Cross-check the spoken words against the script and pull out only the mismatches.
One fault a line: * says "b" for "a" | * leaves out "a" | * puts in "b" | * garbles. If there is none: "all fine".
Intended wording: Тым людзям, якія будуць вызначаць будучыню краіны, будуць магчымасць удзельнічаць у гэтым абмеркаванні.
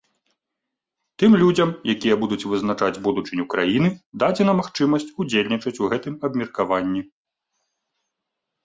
* says "дадзена" for "будуць"